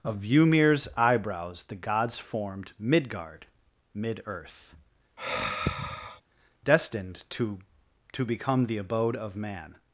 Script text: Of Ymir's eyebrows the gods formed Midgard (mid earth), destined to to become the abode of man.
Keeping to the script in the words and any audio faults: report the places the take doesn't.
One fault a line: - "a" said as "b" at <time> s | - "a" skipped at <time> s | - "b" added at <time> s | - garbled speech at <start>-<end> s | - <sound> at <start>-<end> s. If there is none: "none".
- sigh at 5.2-6.2 s